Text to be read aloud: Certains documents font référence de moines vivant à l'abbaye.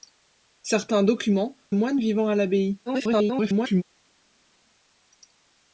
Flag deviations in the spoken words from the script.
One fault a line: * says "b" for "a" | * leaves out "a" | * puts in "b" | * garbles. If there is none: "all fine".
* leaves out "font référence de"
* garbles